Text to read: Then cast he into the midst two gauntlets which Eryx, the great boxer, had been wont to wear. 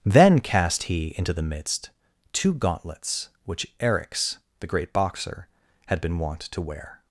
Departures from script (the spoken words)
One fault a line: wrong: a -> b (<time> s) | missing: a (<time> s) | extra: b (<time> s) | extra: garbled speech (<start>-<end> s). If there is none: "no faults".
no faults